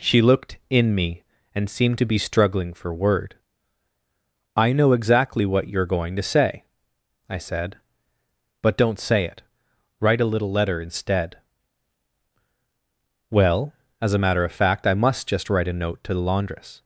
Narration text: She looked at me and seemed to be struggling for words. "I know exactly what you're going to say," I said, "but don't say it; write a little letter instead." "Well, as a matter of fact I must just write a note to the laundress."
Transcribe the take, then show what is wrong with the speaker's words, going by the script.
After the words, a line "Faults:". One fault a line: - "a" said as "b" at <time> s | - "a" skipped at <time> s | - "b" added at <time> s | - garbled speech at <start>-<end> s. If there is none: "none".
She looked in me and seemed to be struggling for word. "I know exactly what you're going to say," I said, "but don't say it; write a little letter instead." "Well, as a matter of fact I must just write a note to the laundress."
Faults:
- "at" said as "in" at 0.7 s
- "words" said as "word" at 2.9 s